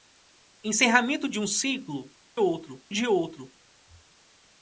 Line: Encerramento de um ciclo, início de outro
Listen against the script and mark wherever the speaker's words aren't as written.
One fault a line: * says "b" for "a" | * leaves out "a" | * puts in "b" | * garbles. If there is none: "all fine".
* says "outro" for "início"